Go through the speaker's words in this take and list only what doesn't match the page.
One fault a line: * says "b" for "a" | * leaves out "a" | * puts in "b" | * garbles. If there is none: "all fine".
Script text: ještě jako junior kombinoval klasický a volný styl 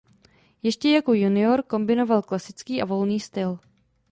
all fine